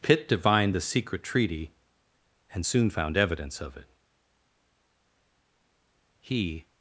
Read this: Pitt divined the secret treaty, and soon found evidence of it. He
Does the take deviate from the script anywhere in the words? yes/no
no